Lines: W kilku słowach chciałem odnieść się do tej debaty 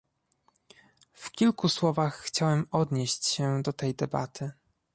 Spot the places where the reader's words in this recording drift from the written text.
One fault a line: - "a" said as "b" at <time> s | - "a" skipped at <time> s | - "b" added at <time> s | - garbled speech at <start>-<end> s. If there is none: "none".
none